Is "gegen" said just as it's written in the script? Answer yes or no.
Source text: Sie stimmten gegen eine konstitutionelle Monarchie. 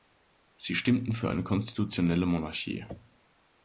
no